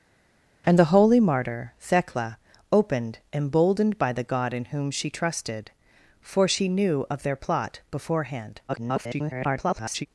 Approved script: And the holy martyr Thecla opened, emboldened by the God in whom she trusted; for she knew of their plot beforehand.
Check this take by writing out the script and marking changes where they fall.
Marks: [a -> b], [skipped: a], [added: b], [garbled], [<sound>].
And the holy martyr Thecla opened, emboldened by the God in whom she trusted; for she knew of their plot beforehand. [garbled]